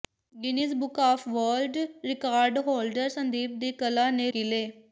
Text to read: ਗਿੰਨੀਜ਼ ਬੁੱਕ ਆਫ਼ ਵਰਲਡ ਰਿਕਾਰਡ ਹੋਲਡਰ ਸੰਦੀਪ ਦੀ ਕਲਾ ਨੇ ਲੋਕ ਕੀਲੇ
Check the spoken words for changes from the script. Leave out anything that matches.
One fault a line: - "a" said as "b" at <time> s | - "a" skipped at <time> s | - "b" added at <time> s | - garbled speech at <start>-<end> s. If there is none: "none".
- "ਲੋਕ" skipped at 4.3 s